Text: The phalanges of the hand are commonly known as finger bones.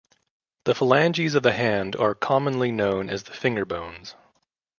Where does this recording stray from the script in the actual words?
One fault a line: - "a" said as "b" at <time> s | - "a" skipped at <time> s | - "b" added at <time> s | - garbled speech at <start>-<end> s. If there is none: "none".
- "the" added at 3.2 s